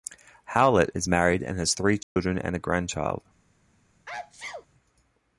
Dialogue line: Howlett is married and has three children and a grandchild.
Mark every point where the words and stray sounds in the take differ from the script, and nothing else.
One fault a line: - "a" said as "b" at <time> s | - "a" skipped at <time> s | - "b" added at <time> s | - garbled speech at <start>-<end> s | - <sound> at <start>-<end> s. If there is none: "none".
- dropout at 2.0-2.2 s
- sneeze at 4.1-4.7 s